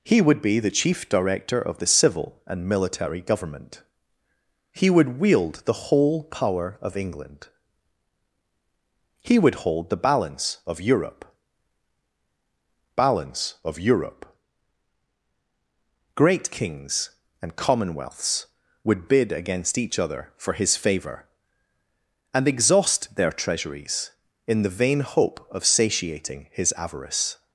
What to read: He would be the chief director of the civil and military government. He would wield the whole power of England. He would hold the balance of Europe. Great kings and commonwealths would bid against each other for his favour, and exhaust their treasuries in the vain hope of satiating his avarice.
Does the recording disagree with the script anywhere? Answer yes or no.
yes